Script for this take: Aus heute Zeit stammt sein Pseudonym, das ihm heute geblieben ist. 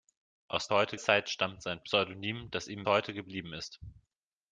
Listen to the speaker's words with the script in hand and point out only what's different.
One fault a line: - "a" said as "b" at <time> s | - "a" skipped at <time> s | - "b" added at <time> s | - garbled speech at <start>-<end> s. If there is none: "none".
none